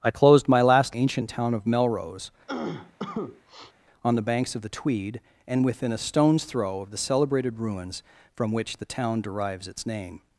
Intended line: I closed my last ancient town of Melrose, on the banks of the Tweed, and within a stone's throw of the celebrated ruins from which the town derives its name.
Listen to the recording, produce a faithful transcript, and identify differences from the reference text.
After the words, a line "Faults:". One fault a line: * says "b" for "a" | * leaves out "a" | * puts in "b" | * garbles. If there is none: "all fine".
I closed my last ancient town of Melrose, on the banks of the Tweed, and within a stone's throw of the celebrated ruins from which the town derives its name.
Faults:
all fine